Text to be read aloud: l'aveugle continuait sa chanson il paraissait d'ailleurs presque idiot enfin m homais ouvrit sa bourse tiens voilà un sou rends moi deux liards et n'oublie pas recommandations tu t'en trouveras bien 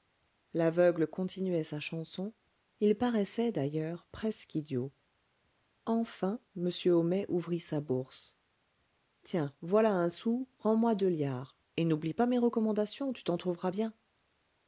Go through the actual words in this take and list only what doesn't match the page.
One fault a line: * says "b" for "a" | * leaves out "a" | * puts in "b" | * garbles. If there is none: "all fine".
* puts in "mes"